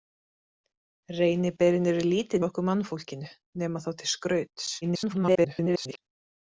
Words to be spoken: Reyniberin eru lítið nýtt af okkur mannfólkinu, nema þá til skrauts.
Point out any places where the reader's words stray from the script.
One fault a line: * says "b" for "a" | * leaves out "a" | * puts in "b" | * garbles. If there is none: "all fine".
* leaves out "nýtt"
* garbles